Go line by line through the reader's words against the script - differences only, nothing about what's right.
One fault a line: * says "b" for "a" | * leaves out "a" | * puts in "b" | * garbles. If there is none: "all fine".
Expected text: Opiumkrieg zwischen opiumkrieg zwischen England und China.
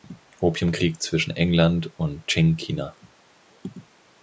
* leaves out "opiumkrieg zwischen"
* puts in "Qing"